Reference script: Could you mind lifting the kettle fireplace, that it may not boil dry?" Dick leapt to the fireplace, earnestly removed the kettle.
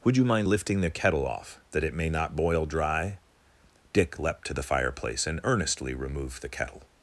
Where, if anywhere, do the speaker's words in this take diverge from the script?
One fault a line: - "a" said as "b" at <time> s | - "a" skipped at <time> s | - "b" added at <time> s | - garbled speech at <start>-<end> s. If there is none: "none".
- "Could" said as "Would" at 0.0 s
- "fireplace" said as "off" at 1.2 s
- "and" added at 5.3 s